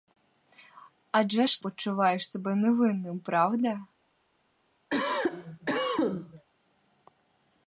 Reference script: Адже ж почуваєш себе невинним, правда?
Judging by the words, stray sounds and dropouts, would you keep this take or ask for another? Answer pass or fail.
fail